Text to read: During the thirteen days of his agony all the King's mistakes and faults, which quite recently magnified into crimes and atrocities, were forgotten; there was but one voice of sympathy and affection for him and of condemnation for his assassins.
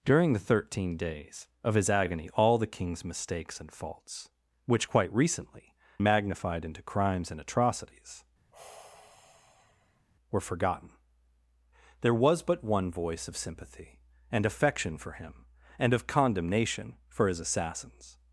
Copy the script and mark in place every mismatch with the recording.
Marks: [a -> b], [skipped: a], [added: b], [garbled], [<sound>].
During the thirteen days of his agony all the King's mistakes and faults, which quite recently magnified into crimes and atrocities, [sigh] were forgotten; there was but one voice of sympathy and affection for him and of condemnation for his assassins.